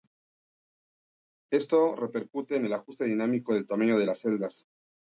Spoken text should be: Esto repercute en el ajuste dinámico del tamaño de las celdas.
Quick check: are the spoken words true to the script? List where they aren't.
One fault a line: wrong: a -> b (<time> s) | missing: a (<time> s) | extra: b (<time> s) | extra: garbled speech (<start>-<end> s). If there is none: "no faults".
no faults